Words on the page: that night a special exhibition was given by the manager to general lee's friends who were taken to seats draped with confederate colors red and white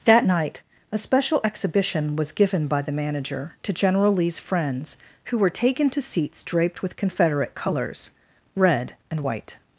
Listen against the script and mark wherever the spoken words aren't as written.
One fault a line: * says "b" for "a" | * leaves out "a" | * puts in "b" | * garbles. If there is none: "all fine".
all fine